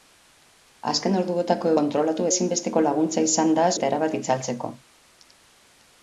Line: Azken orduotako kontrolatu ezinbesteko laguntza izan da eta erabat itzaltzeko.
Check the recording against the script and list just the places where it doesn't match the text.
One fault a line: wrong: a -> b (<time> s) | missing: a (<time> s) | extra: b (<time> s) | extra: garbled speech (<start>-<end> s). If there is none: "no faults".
no faults